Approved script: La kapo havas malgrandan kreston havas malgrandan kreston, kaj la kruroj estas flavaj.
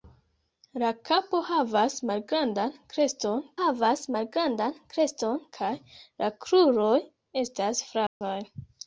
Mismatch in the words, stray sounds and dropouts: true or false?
true